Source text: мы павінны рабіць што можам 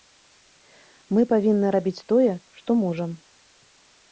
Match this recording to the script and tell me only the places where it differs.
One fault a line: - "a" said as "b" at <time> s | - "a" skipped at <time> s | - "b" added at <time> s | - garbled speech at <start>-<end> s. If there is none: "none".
- "тое" added at 2.1 s